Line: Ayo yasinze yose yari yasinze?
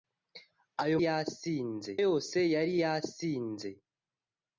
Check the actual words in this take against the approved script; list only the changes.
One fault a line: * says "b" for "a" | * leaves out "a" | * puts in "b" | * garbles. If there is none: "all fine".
all fine